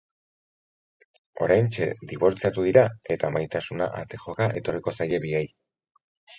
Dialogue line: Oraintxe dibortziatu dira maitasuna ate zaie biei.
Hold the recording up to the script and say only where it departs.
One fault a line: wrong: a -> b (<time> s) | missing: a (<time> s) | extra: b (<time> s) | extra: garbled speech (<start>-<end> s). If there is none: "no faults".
extra: eta (3.2 s)
extra: joka etorriko (4.3 s)